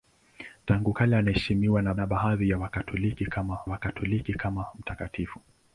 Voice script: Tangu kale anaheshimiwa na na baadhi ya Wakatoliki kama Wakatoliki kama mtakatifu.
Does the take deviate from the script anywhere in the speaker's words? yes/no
no